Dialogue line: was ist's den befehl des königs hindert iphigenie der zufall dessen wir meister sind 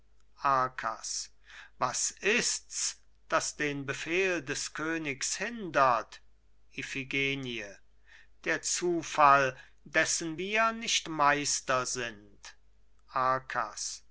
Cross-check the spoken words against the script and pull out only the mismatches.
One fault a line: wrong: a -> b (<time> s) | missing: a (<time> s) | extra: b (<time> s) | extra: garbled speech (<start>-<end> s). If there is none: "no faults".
extra: das (3.3 s)
extra: nicht (10.7 s)